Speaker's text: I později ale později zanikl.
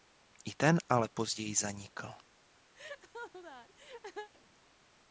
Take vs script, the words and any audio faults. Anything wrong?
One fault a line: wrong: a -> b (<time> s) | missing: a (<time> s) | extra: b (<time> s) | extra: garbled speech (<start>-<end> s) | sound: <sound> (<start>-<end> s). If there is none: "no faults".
wrong: později -> ten (0.6 s)
sound: laugh (2.8-4.3 s)